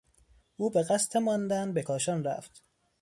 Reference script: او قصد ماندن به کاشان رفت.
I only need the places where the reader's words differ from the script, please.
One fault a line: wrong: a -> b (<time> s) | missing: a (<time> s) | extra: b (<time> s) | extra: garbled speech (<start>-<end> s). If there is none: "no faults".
extra: به (0.7 s)